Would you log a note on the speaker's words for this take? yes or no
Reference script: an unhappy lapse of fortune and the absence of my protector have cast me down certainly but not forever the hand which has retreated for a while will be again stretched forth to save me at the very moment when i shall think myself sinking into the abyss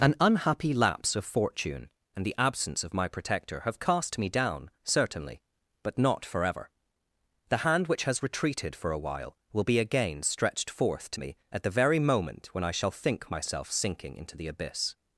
yes